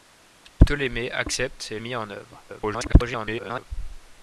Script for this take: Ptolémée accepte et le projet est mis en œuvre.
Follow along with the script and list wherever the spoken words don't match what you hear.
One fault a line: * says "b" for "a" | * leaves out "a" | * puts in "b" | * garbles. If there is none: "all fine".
* leaves out "le projet"
* garbles